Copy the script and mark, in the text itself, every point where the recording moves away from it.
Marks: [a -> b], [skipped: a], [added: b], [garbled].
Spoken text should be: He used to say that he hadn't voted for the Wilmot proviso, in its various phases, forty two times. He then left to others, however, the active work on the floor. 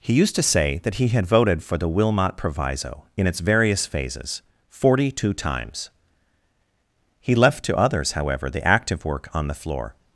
He used to say that he [hadn't -> had] voted for the Wilmot proviso, in its various phases, forty two times. He [skipped: then] left to others, however, the active work on the floor.